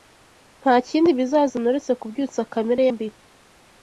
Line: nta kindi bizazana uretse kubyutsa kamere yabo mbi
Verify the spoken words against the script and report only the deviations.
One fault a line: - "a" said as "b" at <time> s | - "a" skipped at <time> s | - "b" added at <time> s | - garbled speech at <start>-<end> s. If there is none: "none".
- "yabo" skipped at 2.8 s